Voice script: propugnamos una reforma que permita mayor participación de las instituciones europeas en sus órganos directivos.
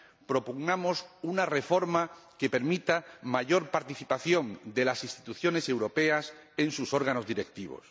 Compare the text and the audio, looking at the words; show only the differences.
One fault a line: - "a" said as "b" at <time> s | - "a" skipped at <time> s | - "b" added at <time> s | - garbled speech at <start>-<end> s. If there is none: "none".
none